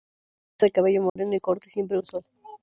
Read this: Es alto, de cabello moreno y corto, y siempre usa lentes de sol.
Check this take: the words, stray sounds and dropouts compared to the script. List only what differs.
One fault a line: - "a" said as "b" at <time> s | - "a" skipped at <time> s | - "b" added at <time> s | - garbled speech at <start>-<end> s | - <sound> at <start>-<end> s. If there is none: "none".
- "alto" skipped at 0.7 s
- dropout at 1.1-1.2 s
- "usa lentes" skipped at 2.0 s